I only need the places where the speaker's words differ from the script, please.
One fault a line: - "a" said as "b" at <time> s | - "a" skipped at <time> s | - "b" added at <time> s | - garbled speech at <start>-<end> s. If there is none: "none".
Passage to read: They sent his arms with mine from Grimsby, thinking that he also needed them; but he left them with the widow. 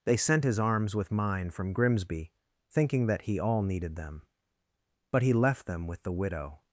- "also" said as "all" at 3.4 s